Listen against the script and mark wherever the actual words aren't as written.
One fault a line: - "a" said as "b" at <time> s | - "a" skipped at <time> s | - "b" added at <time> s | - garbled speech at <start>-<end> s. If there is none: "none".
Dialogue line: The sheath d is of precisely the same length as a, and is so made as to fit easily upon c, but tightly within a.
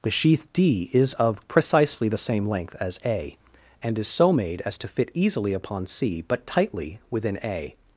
none